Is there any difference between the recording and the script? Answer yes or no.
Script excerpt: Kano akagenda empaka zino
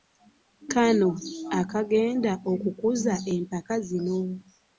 yes